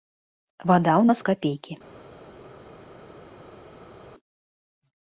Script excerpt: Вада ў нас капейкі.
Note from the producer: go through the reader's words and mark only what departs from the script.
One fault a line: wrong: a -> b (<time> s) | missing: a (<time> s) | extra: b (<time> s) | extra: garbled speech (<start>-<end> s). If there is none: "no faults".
no faults